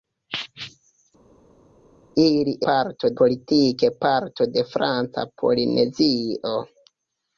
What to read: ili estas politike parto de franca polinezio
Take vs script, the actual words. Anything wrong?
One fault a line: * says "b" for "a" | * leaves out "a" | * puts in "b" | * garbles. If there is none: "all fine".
* says "parto" for "estas"